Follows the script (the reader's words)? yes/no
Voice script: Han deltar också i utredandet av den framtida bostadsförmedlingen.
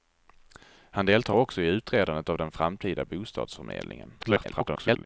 no